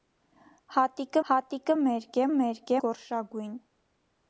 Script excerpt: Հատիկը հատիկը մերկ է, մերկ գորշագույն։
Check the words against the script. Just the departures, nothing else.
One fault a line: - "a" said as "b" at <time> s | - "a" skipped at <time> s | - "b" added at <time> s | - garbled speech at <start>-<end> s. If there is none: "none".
none